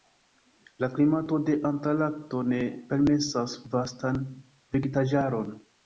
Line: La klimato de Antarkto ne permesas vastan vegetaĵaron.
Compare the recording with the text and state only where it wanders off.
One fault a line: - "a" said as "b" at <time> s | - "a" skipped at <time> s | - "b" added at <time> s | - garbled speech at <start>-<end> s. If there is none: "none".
none